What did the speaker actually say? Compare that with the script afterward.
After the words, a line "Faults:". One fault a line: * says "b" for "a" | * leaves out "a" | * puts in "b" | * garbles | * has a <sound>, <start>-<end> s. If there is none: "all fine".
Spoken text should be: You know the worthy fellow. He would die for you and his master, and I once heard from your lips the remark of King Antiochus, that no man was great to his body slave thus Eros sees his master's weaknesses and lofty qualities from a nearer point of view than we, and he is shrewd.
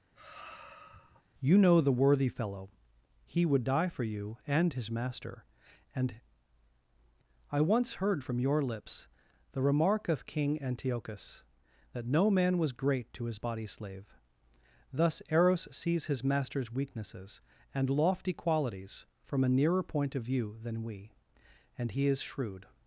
You know the worthy fellow. He would die for you and his master, and I once heard from your lips the remark of King Antiochus, that no man was great to his body slave thus Eros sees his master's weaknesses and lofty qualities from a nearer point of view than we, and he is shrewd.
Faults:
* has a sigh, 0.1-1.2 s